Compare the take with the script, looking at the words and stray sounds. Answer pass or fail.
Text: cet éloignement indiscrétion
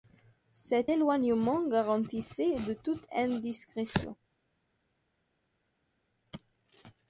fail